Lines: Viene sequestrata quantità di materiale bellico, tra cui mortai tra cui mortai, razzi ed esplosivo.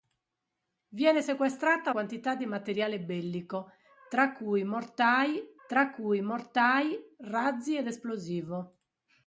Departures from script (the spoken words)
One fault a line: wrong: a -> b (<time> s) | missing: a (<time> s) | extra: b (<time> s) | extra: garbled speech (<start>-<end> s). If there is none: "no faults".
no faults